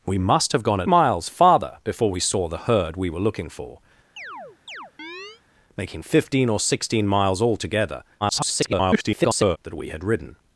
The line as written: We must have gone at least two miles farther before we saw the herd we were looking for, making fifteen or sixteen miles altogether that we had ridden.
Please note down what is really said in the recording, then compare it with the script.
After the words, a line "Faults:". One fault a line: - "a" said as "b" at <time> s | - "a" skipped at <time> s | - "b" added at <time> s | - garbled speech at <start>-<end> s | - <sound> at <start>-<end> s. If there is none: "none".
We must have gone at miles farther before we saw the herd we were looking for, making fifteen or sixteen miles altogether [garbled] that we had ridden.
Faults:
- "least two" skipped at 0.9 s
- chirp at 4.2-5.4 s
- garbled speech at 8.2-9.6 s